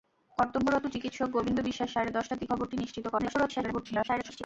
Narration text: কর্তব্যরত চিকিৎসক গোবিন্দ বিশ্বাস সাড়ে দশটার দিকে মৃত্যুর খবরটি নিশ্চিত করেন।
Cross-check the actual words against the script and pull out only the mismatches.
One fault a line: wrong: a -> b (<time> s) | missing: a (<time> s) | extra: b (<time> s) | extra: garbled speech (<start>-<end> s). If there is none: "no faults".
missing: মৃত্যুর (2.5 s)
extra: garbled speech (3.2-4.4 s)